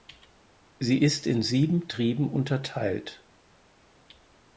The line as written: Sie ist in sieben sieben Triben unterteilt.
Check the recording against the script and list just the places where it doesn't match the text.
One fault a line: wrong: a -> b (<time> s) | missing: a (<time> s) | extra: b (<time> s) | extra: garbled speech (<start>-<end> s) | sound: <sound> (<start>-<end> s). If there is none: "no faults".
missing: sieben (1.9 s)